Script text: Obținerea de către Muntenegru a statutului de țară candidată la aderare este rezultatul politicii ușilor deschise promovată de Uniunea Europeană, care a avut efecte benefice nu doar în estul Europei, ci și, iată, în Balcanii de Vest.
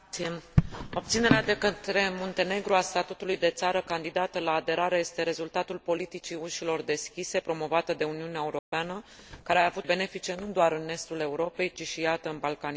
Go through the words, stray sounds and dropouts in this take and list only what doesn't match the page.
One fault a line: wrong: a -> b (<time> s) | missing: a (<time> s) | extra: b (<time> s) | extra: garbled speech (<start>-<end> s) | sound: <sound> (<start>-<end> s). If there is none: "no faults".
sound: dropout (8.6-8.7 s)
missing: efecte (9.9 s)